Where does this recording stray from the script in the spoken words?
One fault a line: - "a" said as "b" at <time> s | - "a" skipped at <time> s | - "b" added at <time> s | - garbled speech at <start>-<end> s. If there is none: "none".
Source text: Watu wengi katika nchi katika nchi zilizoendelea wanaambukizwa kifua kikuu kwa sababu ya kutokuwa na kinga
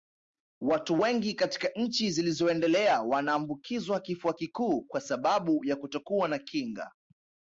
- "katika nchi" skipped at 2.1 s